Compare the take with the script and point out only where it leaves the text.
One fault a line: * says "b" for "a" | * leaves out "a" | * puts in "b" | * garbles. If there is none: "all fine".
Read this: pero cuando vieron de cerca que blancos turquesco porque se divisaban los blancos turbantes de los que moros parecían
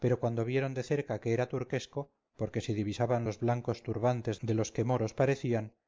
* says "era" for "blancos"